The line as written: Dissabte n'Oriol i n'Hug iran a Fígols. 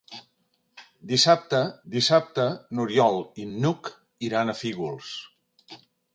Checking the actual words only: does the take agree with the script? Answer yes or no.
no